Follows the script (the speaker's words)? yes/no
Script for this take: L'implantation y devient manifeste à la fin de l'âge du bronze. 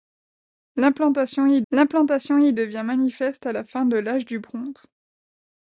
no